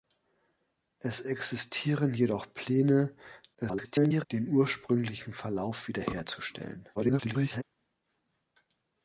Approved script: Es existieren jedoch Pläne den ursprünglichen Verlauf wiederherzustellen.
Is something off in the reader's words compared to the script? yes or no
yes